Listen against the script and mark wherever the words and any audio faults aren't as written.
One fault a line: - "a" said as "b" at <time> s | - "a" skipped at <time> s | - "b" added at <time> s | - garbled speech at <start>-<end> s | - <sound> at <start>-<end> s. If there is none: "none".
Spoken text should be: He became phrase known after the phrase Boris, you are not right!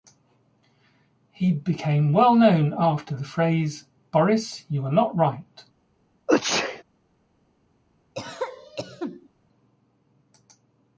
- "phrase" said as "well" at 2.1 s
- sneeze at 6.3-6.8 s
- cough at 8.1-9.3 s